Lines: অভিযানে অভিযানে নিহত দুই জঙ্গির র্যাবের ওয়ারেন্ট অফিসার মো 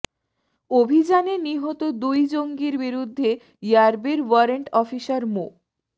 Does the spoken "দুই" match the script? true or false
true